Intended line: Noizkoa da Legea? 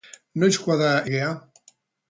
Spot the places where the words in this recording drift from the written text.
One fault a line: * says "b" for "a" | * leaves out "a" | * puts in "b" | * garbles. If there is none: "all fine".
all fine